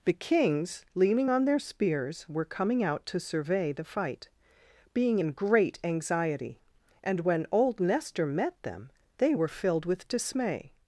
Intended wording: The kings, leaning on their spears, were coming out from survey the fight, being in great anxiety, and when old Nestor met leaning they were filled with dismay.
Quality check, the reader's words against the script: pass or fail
fail